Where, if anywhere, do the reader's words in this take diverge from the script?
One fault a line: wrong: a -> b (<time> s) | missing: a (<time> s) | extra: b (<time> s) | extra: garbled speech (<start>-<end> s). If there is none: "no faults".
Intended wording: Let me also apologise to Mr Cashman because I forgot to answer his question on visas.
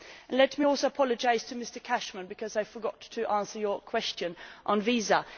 no faults